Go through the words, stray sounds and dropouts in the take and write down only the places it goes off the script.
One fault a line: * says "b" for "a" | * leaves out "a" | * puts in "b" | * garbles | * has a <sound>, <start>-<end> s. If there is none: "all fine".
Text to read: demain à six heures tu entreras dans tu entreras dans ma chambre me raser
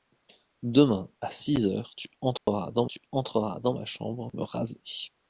* has a dropout, 2.4-2.5 s